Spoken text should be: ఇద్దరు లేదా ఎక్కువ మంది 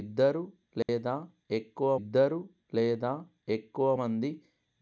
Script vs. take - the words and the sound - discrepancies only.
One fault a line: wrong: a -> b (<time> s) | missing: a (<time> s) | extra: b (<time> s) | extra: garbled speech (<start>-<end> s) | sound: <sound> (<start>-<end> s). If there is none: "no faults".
sound: dropout (0.8-0.9 s)
extra: ఇద్దరు లేదా ఎక్కువ (2.0 s)